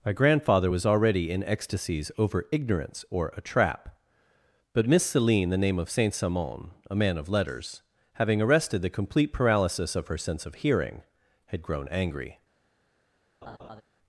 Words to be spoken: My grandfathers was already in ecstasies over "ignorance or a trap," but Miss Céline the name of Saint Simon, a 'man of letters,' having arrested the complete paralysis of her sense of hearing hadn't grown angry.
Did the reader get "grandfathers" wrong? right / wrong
wrong